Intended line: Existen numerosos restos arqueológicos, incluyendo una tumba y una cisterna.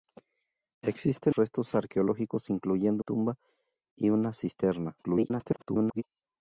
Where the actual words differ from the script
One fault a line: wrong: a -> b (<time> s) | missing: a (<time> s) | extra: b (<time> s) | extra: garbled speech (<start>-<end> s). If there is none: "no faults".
missing: numerosos (1.4 s)
missing: una (3.0 s)
extra: garbled speech (5.0-6.0 s)